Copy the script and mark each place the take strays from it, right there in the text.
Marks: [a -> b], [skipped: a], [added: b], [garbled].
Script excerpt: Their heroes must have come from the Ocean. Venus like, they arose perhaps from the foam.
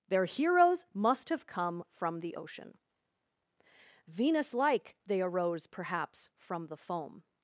Their heroes must have come from the Ocean. Venus like, they arose perhaps from the foam.